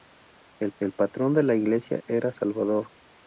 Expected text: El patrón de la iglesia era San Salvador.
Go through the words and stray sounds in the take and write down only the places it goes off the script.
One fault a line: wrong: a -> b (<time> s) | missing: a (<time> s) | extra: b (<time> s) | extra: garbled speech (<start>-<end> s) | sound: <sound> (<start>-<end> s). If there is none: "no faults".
extra: el (0.8 s)
missing: San (2.3 s)